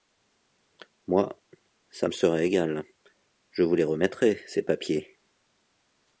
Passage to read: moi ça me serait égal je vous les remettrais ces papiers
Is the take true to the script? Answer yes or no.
yes